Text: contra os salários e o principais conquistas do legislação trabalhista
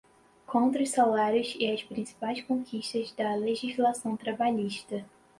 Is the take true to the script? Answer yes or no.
no